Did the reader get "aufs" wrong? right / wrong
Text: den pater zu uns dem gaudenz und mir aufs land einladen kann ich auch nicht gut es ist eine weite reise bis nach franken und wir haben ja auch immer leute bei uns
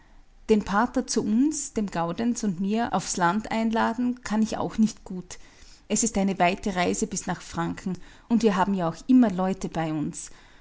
right